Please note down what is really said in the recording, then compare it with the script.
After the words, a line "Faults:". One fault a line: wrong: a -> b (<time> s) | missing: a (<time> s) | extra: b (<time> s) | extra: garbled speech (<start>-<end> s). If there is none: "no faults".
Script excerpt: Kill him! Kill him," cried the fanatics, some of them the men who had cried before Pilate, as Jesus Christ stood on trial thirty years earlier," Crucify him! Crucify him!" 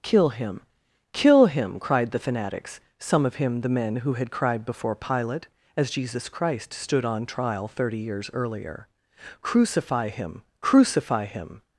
Kill him! Kill him," cried the fanatics, some of him the men who had cried before Pilate, as Jesus Christ stood on trial thirty years earlier," Crucify him! Crucify him!"
Faults:
wrong: them -> him (3.4 s)